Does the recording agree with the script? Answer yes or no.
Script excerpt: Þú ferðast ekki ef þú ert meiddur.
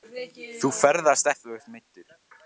no